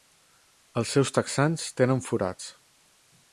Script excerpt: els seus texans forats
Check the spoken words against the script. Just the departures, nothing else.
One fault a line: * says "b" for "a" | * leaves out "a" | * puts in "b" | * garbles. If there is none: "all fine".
* puts in "tenen"